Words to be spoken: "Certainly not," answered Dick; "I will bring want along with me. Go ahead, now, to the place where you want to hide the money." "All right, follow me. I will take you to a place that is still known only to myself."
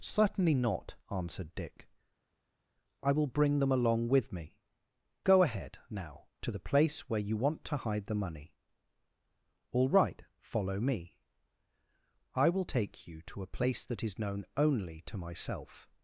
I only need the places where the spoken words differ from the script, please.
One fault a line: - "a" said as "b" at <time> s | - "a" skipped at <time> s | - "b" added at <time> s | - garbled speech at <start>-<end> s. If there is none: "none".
- "want" said as "them" at 3.6 s
- "still" skipped at 14.2 s